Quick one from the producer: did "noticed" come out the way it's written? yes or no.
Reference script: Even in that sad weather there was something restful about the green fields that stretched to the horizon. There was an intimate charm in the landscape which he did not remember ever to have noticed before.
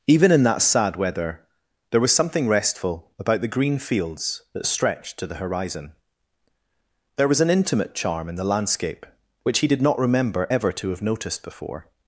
yes